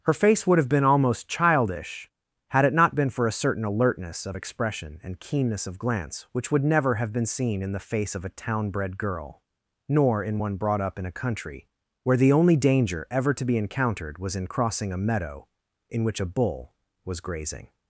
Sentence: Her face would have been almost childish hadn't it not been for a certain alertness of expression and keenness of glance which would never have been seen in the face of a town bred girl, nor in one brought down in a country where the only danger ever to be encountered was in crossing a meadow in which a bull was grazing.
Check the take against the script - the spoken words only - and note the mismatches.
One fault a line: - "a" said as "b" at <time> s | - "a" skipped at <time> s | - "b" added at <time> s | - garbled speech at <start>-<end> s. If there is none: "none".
- "hadn't" said as "had" at 2.5 s
- "down" said as "up" at 10.8 s